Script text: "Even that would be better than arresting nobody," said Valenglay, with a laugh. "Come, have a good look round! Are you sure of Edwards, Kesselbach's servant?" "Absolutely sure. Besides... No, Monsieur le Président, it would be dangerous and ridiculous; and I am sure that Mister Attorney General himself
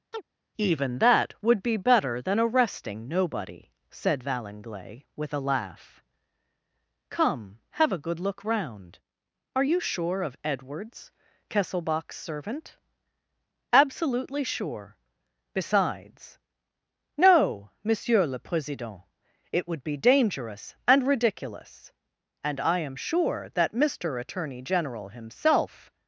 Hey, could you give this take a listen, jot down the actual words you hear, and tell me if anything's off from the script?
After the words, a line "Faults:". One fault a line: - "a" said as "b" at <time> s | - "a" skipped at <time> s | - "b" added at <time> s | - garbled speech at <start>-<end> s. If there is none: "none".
"Even that would be better than arresting nobody," said Valenglay, with a laugh. "Come, have a good look round! Are you sure of Edwards, Kesselbach's servant?" "Absolutely sure. Besides... No, Monsieur le Président, it would be dangerous and ridiculous; and I am sure that Mister Attorney General himself
Faults:
none